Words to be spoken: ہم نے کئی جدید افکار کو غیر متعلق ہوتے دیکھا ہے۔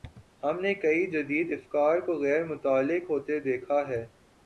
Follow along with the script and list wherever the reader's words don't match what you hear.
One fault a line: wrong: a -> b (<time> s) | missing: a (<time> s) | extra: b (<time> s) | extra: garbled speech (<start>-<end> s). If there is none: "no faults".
no faults